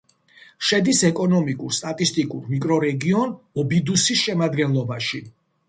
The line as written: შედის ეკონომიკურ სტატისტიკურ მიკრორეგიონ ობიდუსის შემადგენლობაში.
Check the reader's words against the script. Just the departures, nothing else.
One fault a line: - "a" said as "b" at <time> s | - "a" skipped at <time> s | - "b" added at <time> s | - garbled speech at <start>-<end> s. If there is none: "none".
none